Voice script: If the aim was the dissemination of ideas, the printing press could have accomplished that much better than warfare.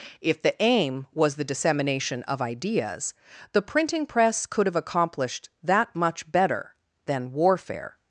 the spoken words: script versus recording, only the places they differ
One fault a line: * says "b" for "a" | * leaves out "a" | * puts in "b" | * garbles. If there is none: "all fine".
all fine